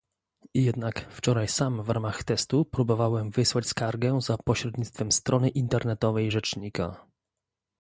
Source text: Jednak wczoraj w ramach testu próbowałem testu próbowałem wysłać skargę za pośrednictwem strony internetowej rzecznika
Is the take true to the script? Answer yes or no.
no